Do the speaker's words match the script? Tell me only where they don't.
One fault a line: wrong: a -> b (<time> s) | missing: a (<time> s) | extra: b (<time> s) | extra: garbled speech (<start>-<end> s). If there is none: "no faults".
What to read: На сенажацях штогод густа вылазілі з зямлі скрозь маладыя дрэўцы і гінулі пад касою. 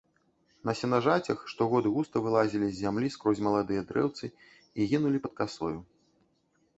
no faults